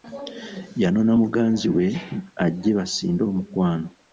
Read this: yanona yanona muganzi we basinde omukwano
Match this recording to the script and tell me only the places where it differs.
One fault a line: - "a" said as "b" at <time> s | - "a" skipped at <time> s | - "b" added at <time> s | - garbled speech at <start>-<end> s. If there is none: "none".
- "yanona" skipped at 1.1 s
- "ajje" added at 2.4 s